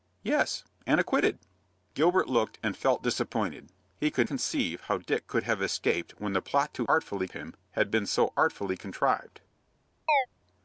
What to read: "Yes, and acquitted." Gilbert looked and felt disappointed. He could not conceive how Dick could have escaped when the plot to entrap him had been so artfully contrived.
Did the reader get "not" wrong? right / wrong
wrong